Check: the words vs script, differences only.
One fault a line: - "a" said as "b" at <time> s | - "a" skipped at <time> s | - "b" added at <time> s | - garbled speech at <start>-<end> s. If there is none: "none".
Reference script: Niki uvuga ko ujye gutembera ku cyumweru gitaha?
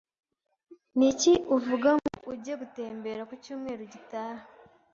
- "ko" said as "ngo" at 2.0 s